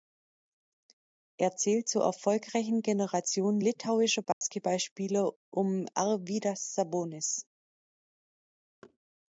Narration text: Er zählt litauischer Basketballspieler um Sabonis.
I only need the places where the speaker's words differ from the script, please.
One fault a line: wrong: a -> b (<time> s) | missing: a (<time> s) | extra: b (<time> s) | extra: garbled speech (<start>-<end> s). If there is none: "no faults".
extra: zur erfolgreichen Generation (1.9 s)
extra: Arvydas (5.9 s)